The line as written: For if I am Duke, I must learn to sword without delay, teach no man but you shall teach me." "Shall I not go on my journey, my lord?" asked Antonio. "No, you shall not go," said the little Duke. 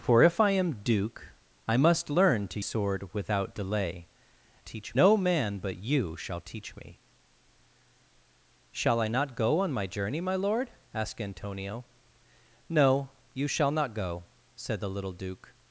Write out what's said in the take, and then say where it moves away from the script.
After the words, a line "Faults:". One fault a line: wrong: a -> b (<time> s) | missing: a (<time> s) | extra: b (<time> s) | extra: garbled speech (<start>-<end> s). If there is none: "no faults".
For if I am Duke, I must learn to sword without delay, teach no man but you shall teach me." "Shall I not go on my journey, my lord?" asked Antonio. "No, you shall not go," said the little Duke.
Faults:
no faults